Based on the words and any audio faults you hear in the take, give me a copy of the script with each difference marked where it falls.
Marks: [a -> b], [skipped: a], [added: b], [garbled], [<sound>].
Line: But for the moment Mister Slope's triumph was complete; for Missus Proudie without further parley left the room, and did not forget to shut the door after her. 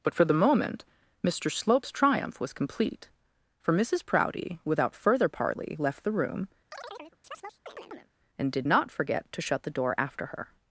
But for the moment Mister Slope's triumph was complete; for Missus Proudie without further parley left the room, [chirp] and did not forget to shut the door after her.